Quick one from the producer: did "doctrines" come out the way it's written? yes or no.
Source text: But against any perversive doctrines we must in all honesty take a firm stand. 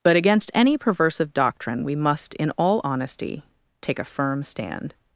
no